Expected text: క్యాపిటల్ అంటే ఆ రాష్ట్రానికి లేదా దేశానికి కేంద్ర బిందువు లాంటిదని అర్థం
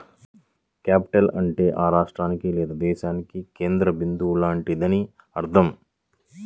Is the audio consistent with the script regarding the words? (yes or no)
yes